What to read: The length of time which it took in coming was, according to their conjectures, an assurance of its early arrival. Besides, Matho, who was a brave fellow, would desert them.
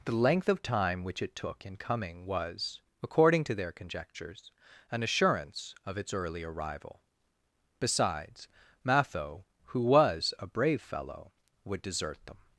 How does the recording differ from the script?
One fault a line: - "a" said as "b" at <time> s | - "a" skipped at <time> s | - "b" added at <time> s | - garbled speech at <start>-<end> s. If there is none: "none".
none